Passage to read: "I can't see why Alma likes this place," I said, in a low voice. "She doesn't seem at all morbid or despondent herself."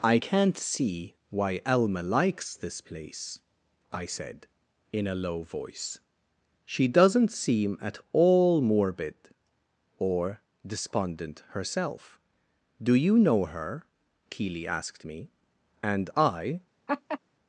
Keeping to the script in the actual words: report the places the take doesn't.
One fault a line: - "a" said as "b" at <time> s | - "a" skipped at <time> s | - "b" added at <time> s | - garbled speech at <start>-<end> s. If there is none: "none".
- "Do you know her Keeley asked me and I" added at 12.8 s